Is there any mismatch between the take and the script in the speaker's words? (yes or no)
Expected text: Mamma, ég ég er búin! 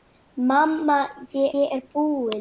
no